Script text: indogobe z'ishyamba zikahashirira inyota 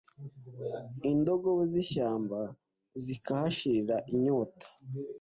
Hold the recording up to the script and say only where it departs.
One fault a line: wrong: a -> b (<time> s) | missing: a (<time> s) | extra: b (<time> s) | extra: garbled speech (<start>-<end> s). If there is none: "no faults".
no faults